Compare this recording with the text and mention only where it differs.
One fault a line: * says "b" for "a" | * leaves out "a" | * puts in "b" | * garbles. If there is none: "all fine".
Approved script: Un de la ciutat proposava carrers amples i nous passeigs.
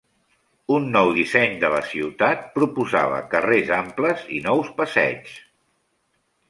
* puts in "nou disseny"